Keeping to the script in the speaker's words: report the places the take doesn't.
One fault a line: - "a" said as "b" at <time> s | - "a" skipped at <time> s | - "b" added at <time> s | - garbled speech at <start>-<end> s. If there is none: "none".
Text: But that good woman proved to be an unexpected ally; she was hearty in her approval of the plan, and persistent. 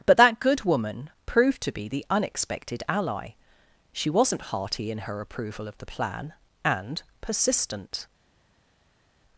- "an" said as "the" at 1.9 s
- "was" said as "wasn't" at 4.1 s